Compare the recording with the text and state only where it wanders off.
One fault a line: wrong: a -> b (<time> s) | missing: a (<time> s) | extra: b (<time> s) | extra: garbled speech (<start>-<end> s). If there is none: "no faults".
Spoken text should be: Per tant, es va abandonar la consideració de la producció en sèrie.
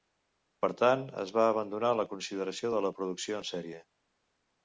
no faults